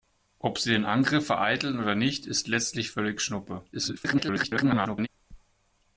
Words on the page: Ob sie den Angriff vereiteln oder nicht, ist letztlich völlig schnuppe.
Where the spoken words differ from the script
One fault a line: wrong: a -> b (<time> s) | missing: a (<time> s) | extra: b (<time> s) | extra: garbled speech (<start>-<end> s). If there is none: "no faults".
extra: garbled speech (3.7-5.1 s)